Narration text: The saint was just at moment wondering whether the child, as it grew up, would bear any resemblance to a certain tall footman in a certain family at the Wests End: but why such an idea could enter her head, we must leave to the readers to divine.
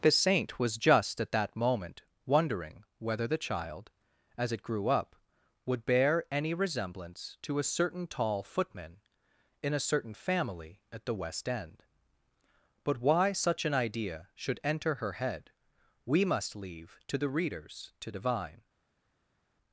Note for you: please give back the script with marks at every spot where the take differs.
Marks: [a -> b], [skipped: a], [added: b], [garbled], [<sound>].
The saint was just at [added: that] moment wondering whether the child, as it grew up, would bear any resemblance to a certain tall footman in a certain family at the [Wests -> West] End: but why such an idea [could -> should] enter her head, we must leave to the readers to divine.